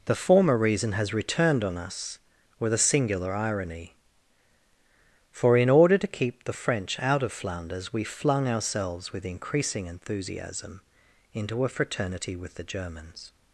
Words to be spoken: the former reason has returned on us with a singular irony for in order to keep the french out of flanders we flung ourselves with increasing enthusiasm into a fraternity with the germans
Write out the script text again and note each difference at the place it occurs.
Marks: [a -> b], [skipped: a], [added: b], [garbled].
the former reason has returned on us with a singular irony for in order to keep the french out of flanders we flung ourselves with increasing enthusiasm into a fraternity with the germans